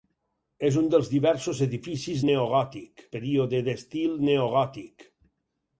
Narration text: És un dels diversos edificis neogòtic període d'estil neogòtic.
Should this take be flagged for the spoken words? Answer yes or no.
no